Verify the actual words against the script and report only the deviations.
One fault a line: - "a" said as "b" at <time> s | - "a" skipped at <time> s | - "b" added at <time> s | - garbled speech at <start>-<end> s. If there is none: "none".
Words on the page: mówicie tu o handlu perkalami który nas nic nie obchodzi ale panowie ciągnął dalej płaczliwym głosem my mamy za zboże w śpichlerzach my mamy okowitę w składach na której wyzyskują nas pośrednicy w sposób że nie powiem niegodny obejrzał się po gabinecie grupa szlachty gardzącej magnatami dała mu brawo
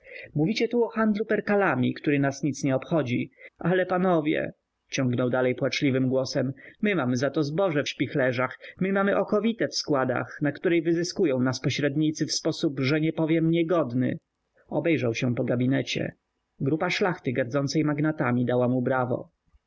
- "to" added at 7.3 s